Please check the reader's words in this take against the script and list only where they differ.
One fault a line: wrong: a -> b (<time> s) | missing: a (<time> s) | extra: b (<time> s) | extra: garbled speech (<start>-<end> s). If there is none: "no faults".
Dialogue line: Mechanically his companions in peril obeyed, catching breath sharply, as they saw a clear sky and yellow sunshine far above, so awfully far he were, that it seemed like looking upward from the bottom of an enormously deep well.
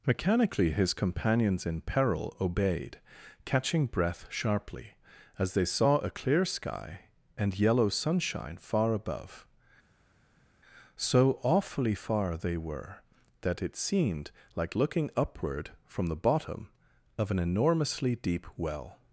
wrong: he -> they (12.4 s)